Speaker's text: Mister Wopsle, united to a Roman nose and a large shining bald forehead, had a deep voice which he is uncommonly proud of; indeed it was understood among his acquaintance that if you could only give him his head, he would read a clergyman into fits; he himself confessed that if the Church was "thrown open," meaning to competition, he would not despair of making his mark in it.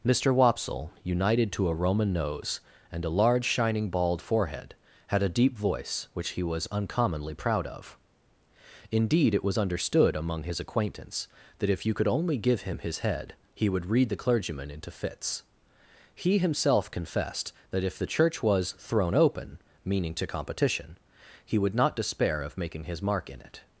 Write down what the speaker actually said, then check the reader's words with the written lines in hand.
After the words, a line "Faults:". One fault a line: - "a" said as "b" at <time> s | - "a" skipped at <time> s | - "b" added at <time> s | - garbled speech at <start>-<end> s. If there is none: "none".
Mister Wopsle, united to a Roman nose and a large shining bald forehead, had a deep voice which he was uncommonly proud of; indeed it was understood among his acquaintance that if you could only give him his head, he would read the clergyman into fits; he himself confessed that if the Church was "thrown open," meaning to competition, he would not despair of making his mark in it.
Faults:
- "is" said as "was" at 6.4 s
- "a" said as "the" at 14.1 s